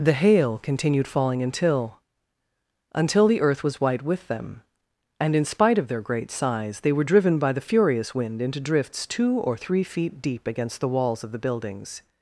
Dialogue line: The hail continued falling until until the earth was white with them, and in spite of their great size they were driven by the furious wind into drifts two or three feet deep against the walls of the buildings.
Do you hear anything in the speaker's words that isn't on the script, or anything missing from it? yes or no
no